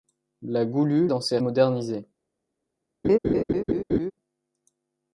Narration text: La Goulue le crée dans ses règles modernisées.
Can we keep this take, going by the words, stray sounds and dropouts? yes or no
no